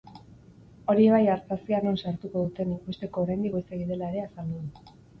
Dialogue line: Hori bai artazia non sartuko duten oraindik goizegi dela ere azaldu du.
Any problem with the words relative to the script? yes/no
yes